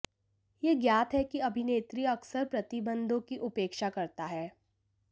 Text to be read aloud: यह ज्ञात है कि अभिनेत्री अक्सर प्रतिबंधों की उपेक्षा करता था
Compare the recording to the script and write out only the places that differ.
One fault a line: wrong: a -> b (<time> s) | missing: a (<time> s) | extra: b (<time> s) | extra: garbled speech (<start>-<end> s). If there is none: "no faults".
wrong: था -> है (4.2 s)